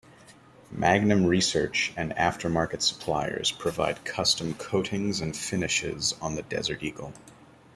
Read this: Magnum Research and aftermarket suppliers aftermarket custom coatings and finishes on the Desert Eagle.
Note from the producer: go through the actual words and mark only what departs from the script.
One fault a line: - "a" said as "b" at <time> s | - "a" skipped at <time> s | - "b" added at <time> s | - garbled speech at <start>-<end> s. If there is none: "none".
- "aftermarket" said as "provide" at 3.5 s